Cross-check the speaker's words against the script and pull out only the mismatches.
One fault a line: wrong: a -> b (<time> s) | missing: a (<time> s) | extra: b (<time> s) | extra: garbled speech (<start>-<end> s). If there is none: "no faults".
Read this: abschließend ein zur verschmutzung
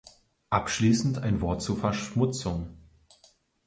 extra: wort (1.4 s)